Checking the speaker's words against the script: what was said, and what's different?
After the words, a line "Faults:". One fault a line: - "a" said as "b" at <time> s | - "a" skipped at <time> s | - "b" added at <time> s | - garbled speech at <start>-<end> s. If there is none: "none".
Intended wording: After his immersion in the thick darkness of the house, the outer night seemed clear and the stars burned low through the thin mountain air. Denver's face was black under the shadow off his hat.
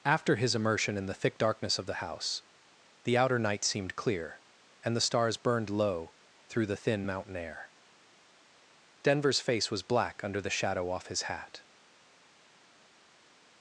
After his immersion in the thick darkness of the house, the outer night seemed clear and the stars burned low through the thin mountain air. Denver's face was black under the shadow off his hat.
Faults:
none